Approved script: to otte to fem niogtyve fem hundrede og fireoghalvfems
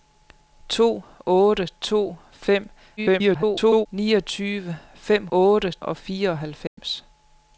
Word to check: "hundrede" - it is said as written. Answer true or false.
false